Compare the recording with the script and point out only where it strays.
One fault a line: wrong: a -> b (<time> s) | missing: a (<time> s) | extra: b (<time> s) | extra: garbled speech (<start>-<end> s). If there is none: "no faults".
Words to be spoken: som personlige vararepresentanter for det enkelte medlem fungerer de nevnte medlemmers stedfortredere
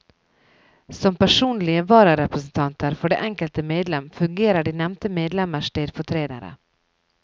no faults